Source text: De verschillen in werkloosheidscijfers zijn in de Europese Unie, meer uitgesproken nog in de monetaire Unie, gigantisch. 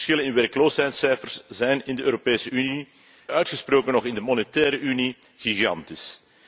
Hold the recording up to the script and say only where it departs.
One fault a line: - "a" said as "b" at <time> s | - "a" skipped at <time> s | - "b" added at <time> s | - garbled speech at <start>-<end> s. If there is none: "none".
- "meer" skipped at 2.9 s